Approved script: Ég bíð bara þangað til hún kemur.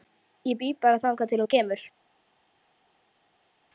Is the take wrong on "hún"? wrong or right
right